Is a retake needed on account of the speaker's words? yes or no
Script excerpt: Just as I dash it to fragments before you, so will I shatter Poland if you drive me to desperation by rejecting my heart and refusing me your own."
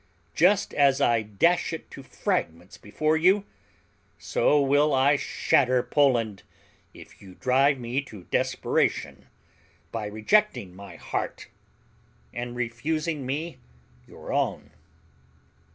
no